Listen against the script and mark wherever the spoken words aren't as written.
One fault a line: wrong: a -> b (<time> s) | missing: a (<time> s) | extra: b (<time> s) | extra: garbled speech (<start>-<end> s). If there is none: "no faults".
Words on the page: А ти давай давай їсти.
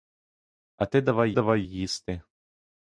no faults